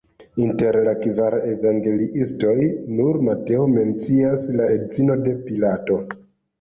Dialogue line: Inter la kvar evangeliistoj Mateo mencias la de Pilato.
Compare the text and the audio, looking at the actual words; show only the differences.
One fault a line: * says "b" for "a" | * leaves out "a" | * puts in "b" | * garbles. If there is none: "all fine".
* puts in "nur"
* puts in "edzinon"